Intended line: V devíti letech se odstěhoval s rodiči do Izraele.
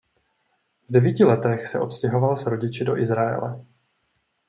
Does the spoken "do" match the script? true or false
true